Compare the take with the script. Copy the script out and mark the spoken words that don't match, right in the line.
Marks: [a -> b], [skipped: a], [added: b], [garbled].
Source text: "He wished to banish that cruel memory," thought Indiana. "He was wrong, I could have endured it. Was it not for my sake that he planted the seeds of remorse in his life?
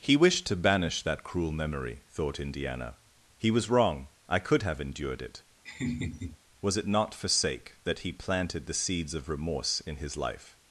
"He wished to banish that cruel memory," thought Indiana. "He was wrong, I could have endured it. Was it not for [skipped: my] sake that he planted the seeds of remorse in his life?